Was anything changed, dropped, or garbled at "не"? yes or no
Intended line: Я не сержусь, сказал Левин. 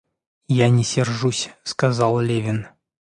no